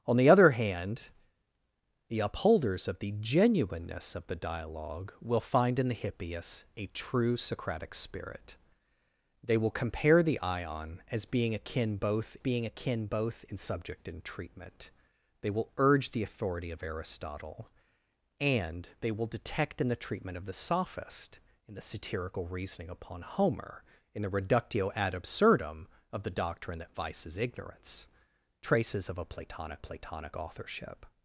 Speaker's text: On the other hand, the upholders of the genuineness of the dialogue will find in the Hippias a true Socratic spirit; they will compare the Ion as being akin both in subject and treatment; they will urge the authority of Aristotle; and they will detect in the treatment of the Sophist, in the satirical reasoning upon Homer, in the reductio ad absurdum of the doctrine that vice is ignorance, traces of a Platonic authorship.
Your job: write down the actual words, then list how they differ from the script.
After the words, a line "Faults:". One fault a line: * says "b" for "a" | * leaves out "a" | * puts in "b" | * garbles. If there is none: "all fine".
On the other hand, the upholders of the genuineness of the dialogue will find in the Hippias a true Socratic spirit; they will compare the Ion as being akin both being akin both in subject and treatment; they will urge the authority of Aristotle; and they will detect in the treatment of the Sophist, in the satirical reasoning upon Homer, in the reductio ad absurdum of the doctrine that vice is ignorance, traces of a Platonic Platonic authorship.
Faults:
* puts in "being akin both"
* puts in "Platonic"